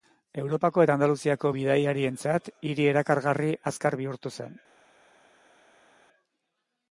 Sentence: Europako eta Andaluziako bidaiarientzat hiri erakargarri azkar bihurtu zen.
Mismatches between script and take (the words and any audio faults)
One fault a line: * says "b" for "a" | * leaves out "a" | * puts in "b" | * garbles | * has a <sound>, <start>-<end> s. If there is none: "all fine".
all fine